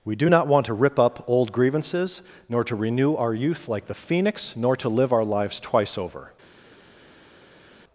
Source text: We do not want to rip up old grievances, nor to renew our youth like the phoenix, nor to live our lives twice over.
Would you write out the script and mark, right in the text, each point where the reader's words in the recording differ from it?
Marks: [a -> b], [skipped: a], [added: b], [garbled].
We do not want to rip up old grievances, nor to renew our youth like the phoenix, nor to live our lives twice over.